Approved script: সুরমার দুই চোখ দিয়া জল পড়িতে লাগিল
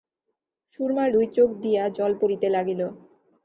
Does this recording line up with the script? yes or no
yes